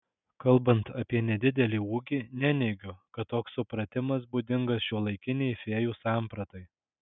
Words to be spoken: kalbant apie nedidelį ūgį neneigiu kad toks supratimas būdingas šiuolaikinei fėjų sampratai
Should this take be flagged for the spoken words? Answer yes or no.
no